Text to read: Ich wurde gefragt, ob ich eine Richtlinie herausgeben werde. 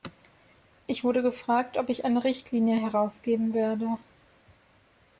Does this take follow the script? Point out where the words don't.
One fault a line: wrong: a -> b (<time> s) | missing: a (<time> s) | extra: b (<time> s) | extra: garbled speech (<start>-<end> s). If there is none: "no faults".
no faults